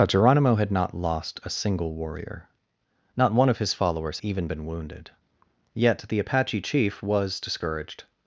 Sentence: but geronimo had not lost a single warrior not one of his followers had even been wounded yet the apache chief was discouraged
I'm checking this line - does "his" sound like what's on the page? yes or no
yes